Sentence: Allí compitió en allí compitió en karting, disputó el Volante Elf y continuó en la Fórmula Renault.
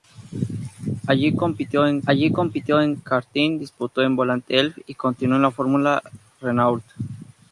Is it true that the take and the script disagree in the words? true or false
false